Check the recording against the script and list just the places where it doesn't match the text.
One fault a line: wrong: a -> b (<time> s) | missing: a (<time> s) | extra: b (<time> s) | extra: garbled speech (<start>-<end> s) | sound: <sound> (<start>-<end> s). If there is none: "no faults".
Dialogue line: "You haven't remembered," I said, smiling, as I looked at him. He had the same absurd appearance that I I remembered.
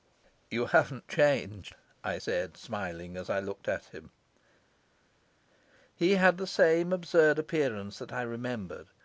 wrong: remembered -> changed (1.1 s)
missing: I (8.2 s)